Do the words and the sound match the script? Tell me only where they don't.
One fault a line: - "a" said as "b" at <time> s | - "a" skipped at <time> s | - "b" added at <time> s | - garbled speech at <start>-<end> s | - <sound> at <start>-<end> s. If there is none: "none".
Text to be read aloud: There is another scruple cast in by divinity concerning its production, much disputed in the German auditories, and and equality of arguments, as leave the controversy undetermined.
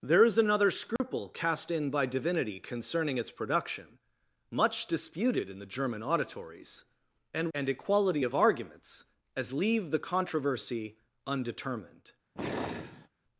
- dropout at 1.0-1.0 s
- sigh at 12.3-13.1 s